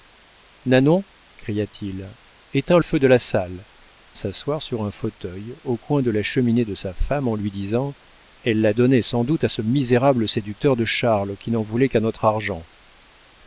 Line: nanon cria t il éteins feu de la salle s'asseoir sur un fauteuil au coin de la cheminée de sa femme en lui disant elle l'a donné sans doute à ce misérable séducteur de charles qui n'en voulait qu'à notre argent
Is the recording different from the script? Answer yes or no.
no